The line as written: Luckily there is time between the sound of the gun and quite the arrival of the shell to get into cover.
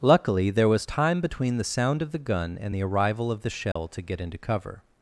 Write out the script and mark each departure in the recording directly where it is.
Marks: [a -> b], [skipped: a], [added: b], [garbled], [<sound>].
Luckily there [is -> was] time between the sound of the gun and [skipped: quite] the arrival of the shell [dropout] to get into cover.